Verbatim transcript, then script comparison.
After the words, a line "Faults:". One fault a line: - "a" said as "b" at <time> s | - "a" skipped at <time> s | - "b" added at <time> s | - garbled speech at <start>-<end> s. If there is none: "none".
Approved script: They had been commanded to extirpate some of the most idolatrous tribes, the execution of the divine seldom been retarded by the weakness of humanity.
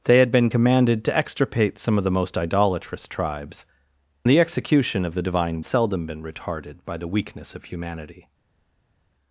They had been commanded to extirpate some of the most idolatrous tribes, the execution of the divine seldom been retarded by the weakness of humanity.
Faults:
none